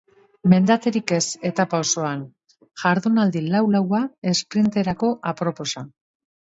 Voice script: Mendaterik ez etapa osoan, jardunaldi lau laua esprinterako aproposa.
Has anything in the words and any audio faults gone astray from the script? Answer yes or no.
no